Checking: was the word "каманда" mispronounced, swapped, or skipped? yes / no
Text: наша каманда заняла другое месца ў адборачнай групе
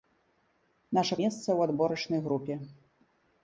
yes